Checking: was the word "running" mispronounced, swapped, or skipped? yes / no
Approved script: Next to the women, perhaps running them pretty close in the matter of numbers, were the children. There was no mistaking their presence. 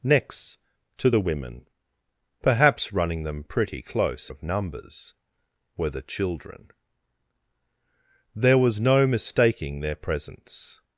no